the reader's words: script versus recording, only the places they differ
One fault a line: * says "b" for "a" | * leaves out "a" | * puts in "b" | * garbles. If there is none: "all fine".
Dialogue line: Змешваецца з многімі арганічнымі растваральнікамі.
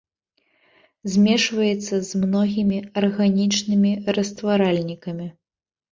all fine